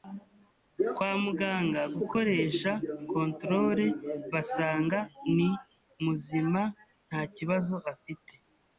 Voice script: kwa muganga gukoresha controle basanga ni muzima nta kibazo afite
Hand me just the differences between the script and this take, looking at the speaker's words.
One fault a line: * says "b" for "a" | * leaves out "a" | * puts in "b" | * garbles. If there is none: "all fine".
all fine